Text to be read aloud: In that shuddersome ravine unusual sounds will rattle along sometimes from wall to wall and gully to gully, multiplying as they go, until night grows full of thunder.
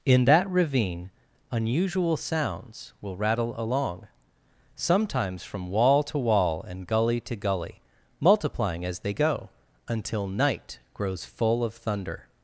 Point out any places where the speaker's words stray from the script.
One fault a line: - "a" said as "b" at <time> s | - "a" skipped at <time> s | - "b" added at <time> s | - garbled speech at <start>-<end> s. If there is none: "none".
- "shuddersome" skipped at 0.5 s